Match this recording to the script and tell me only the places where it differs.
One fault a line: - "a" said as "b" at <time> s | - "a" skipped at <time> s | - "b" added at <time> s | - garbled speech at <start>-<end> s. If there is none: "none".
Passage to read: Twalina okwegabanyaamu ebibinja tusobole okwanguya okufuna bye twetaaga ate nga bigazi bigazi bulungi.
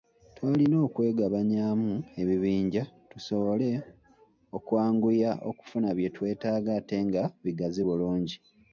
- "bigazi" skipped at 7.8 s